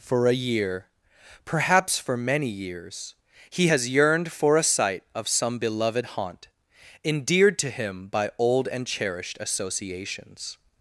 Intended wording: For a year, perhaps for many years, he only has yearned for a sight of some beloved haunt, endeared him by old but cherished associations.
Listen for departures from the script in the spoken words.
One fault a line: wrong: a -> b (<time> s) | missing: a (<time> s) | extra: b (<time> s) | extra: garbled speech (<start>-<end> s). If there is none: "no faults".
missing: only (3.7 s)
extra: to (7.6 s)
wrong: but -> and (8.7 s)